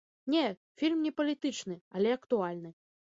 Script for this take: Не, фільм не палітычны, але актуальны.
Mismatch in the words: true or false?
false